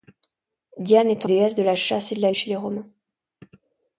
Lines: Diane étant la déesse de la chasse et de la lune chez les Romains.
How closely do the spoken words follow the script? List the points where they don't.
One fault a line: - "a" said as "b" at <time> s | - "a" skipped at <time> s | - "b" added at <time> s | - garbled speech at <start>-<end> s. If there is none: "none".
- "la" skipped at 1.3 s
- "lune" skipped at 2.3 s